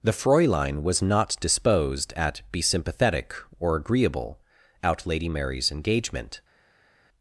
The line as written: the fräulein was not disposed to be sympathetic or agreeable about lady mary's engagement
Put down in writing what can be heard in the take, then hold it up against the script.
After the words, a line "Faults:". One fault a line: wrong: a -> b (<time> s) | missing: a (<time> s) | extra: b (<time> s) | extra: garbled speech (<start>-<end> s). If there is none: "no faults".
the fräulein was not disposed at be sympathetic or agreeable out lady mary's engagement
Faults:
wrong: to -> at (2.1 s)
wrong: about -> out (4.8 s)